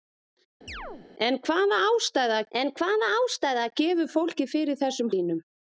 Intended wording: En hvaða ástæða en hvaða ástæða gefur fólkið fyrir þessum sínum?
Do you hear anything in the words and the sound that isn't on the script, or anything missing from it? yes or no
yes